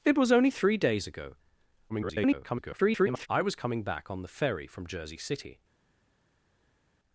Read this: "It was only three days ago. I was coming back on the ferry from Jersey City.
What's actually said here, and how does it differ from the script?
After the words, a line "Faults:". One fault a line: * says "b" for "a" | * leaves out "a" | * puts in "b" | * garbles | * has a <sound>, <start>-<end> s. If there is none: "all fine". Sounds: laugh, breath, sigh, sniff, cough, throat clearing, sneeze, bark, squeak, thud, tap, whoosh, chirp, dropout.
"It was only three days ago. [garbled] I was coming back on the ferry from Jersey City.
Faults:
* garbles